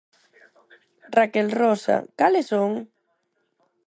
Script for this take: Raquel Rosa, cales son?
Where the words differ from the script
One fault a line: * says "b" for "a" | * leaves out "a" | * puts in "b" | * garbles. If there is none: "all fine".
all fine